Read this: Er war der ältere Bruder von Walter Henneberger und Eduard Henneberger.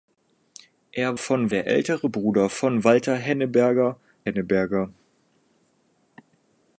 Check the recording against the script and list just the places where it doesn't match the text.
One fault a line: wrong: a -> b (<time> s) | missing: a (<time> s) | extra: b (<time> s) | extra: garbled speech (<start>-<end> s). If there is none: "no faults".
wrong: war -> von (1.2 s)
missing: und Eduard (4.0 s)